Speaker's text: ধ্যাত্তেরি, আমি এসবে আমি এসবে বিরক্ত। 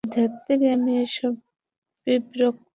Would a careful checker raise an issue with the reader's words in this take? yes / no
yes